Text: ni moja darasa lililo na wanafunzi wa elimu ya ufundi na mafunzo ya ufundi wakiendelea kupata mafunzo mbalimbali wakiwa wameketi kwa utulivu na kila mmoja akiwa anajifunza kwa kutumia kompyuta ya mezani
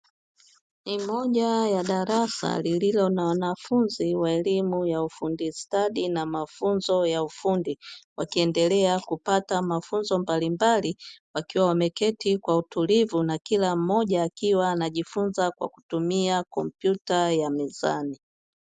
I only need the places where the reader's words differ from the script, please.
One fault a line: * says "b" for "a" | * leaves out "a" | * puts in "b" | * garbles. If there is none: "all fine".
* puts in "ya"
* puts in "stadi"